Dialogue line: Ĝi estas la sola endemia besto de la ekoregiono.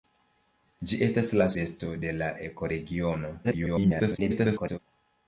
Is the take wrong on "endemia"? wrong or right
wrong